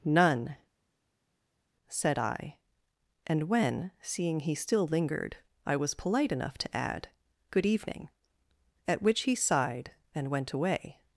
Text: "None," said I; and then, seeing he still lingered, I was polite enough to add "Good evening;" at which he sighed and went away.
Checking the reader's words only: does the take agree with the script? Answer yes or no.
no